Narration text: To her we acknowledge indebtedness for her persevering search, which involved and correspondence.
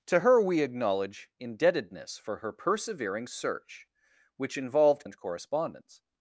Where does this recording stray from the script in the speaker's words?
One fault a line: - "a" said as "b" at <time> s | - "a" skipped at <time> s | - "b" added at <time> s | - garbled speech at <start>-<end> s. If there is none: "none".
none